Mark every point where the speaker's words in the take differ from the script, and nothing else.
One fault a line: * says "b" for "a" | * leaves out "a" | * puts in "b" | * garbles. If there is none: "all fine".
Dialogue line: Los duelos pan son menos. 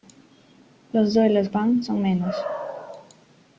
all fine